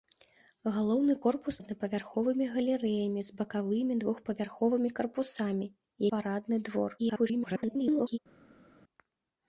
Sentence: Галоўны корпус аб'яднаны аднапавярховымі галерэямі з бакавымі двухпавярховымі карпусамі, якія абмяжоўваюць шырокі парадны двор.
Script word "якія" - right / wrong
wrong